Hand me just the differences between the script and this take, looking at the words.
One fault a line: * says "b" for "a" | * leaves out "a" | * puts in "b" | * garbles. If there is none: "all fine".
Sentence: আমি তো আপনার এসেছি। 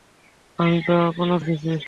all fine